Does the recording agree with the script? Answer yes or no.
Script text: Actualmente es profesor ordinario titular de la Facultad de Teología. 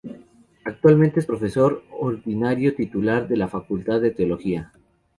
yes